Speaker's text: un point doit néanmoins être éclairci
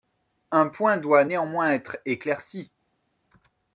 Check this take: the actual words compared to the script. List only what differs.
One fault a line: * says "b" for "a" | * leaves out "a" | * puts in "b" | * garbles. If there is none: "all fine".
all fine